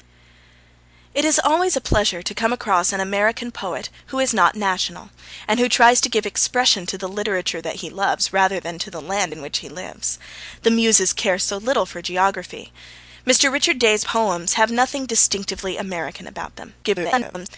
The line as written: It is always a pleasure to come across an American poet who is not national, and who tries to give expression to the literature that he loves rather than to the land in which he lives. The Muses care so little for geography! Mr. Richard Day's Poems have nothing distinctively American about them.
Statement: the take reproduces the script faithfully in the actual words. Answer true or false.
false